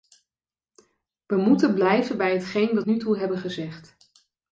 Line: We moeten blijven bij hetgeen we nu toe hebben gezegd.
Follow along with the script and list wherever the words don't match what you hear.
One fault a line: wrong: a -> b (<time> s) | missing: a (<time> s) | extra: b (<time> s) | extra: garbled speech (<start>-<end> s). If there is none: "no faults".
no faults